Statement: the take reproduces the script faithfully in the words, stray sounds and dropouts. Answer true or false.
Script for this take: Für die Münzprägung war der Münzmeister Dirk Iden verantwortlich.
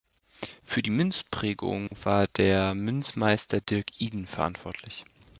false